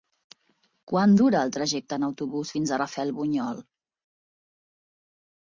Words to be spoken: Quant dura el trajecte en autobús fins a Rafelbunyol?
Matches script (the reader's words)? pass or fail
pass